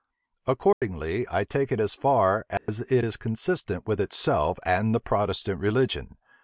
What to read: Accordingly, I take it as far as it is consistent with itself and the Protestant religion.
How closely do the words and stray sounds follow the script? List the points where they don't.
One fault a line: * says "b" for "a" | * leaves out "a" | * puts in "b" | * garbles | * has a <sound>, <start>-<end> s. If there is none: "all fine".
* has a dropout, 0.7-0.8 s
* has a dropout, 2.6-2.7 s